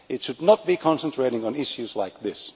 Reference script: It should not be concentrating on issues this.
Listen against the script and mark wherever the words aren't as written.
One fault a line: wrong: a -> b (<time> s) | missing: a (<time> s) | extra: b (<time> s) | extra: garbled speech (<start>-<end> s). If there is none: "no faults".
extra: like (1.9 s)